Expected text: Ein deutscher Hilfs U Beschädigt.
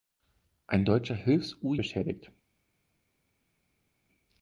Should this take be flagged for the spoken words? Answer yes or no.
no